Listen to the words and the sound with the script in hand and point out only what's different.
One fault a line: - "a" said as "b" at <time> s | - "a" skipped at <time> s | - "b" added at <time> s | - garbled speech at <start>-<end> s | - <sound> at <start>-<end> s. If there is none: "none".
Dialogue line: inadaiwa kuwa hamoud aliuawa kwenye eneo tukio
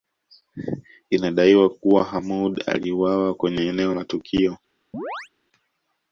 - "la" added at 3.9 s
- chirp at 4.9-5.3 s